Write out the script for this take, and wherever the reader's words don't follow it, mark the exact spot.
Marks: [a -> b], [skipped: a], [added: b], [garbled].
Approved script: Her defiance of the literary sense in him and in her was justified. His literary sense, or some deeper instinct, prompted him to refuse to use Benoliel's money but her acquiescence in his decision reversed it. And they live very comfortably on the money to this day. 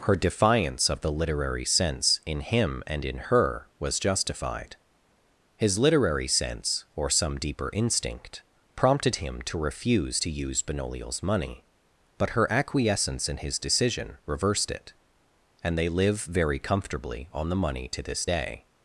Her defiance of the literary sense in him and in her was justified. His literary sense, or some deeper instinct, prompted him to refuse to use Benoliel's money but her acquiescence in his decision reversed it. And they live very comfortably on the money to this day.